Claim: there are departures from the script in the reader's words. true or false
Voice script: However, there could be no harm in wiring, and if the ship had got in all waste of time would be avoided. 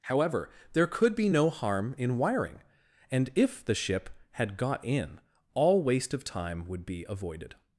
false